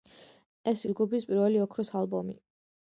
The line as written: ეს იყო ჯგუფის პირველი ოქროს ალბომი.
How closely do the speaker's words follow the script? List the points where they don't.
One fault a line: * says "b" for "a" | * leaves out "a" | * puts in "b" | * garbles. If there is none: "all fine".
* leaves out "იყო"